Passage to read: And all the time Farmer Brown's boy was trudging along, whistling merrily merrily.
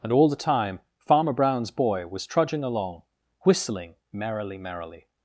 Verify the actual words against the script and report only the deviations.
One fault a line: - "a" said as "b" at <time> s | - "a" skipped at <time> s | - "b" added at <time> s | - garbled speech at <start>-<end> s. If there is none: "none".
none